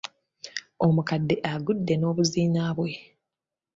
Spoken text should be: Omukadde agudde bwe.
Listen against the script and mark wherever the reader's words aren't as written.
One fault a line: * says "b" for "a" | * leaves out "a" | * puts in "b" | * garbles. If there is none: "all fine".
* puts in "n'obuziina"